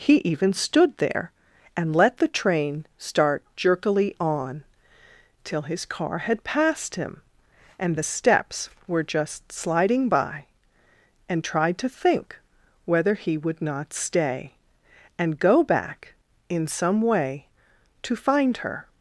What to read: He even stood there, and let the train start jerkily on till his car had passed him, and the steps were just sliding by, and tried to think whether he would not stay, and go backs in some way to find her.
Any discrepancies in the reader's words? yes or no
yes